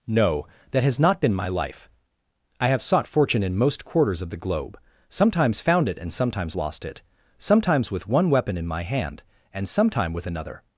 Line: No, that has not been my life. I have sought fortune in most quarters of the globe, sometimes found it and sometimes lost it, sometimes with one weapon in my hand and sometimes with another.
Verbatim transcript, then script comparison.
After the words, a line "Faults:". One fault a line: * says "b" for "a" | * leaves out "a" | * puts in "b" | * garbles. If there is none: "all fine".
No, that has not been my life. I have sought fortune in most quarters of the globe, sometimes found it and sometimes lost it, sometimes with one weapon in my hand and sometime with another.
Faults:
* says "sometime" for "sometimes"